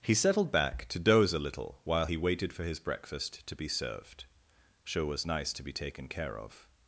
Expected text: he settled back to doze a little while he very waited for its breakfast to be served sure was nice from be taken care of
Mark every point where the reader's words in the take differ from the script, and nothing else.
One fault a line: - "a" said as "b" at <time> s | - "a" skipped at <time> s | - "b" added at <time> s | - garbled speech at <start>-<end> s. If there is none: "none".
- "very" skipped at 2.2 s
- "its" said as "his" at 2.6 s
- "from" said as "to" at 5.5 s